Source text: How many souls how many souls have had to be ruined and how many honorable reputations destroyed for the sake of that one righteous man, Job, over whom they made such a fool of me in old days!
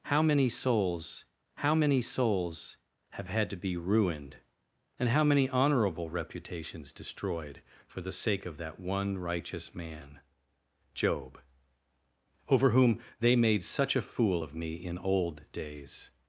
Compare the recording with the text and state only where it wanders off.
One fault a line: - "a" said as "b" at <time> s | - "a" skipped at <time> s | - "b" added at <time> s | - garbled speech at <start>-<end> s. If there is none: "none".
none